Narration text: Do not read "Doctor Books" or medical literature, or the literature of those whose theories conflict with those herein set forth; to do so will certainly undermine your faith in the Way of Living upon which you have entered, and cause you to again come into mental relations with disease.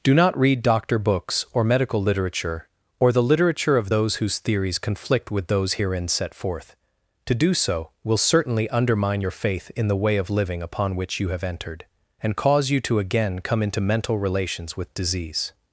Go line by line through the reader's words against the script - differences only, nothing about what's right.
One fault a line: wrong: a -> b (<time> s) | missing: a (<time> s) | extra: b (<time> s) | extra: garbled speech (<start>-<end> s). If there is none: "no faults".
no faults